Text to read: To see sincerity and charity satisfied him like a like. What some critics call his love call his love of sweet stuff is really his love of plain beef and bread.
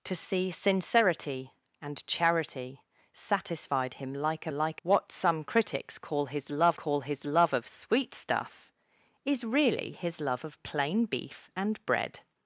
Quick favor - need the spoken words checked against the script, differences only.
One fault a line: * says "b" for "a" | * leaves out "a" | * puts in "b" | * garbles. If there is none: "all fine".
all fine